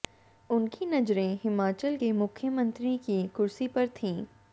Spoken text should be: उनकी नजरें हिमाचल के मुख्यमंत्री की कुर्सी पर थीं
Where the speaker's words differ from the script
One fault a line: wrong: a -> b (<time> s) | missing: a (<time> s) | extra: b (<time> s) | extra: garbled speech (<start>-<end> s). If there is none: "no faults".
no faults